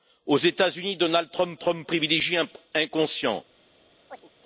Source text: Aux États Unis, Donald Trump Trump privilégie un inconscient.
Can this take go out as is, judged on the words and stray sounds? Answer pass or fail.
fail